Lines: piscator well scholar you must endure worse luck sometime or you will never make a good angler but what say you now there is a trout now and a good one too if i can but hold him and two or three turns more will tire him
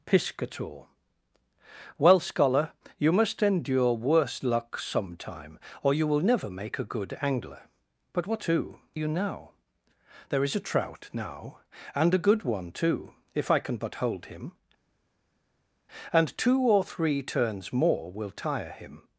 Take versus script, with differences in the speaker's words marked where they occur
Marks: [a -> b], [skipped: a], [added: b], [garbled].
piscator well scholar you must endure worse luck sometime or you will never make a good angler but what [say -> too] you now there is a trout now and a good one too if i can but hold him and two or three turns more will tire him